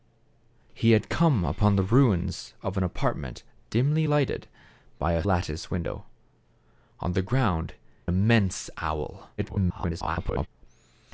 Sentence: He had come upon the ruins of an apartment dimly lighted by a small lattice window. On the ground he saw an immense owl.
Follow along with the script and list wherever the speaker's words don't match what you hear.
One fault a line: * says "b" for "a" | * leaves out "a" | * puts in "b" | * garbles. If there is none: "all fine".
* leaves out "small"
* leaves out "he saw an"
* garbles